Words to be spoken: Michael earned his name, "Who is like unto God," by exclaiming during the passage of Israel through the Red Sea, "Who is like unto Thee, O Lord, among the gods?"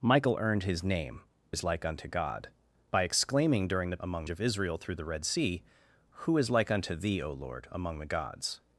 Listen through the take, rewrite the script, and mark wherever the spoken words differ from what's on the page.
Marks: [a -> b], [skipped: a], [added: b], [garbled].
Michael earned his name, [skipped: "Who] is like unto God," by exclaiming during the [passage -> among] of Israel through the Red Sea, "Who is like unto Thee, O Lord, among the gods?"